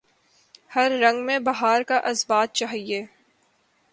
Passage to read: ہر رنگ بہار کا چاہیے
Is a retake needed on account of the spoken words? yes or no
yes